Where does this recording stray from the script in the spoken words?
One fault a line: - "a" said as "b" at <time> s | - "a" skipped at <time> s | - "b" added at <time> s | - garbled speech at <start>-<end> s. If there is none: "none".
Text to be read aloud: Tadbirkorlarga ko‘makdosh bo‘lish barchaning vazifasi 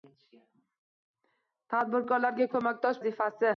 - "bo‘lish barchaning" skipped at 3.0 s